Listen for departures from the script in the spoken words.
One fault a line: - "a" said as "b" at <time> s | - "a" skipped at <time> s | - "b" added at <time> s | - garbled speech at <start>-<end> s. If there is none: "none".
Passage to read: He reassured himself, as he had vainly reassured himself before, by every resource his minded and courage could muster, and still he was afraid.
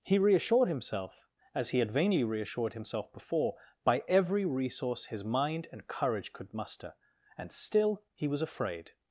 - "minded" said as "mind" at 5.2 s